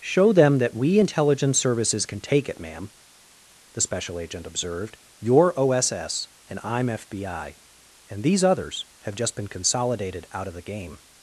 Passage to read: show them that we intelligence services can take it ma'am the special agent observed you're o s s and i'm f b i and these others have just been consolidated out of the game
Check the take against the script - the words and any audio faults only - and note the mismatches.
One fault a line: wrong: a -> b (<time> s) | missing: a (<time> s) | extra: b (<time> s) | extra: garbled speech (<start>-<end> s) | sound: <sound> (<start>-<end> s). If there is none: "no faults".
no faults